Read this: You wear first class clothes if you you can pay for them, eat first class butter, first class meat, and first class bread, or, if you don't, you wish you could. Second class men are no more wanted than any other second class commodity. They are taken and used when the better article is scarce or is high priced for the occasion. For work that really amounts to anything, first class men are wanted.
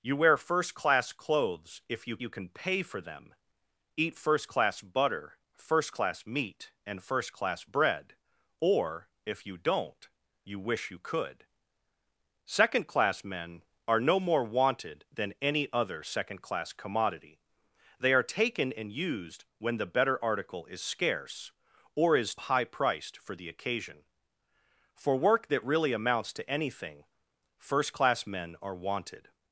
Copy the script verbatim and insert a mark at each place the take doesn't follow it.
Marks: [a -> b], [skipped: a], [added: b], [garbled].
You wear first class clothes if you you can pay for them, eat first class butter, first class meat, and first class bread, or, if you don't, you wish you could. Second class men are no more wanted than any other second class commodity. They are taken and used when the better article is scarce or is high priced for the occasion. For work that really amounts to anything, first class men are wanted.